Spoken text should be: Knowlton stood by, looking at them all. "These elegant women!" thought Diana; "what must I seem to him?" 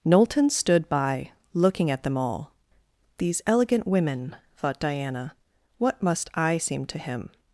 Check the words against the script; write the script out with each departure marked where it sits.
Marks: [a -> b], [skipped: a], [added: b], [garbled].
Knowlton stood by, looking at them all. "These elegant women!" thought Diana; "what must I seem to him?"